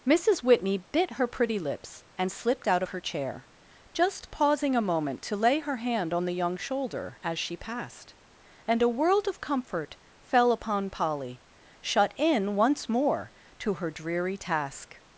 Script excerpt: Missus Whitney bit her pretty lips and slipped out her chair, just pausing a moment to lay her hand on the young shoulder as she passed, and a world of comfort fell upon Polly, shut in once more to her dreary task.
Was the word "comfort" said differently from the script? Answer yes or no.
no